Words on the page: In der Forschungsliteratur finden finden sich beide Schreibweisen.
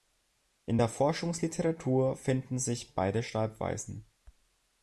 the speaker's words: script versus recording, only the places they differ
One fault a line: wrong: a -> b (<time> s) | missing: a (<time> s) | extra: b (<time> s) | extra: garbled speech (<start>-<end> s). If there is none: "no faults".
missing: finden (2.6 s)